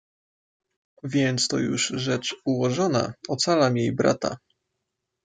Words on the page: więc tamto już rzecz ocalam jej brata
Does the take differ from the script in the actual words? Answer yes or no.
yes